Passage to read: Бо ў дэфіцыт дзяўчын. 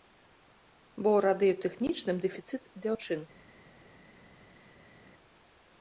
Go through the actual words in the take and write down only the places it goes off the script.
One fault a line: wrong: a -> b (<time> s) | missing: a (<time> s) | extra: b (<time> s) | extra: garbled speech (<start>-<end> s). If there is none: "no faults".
extra: радыётэхнічным (1.2 s)